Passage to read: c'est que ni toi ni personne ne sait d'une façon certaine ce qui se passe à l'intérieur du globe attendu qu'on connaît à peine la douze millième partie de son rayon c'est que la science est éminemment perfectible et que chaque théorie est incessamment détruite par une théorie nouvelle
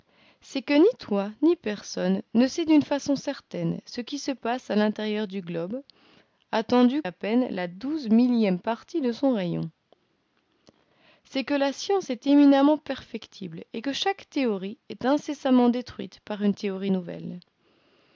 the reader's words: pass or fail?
fail